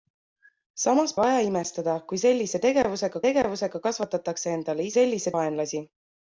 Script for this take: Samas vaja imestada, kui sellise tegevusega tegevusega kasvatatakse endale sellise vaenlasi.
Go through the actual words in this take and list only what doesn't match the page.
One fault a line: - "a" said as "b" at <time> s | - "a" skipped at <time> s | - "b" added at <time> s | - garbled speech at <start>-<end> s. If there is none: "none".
none